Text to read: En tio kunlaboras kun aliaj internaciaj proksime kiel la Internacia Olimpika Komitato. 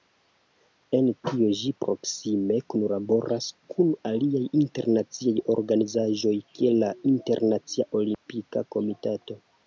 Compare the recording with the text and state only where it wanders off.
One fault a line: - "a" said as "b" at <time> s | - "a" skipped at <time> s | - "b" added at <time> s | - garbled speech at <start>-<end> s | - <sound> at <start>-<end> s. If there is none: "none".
- "ĝi proksime" added at 1.6 s
- "proksime" said as "organizaĵoj" at 5.5 s
- dropout at 8.1-8.3 s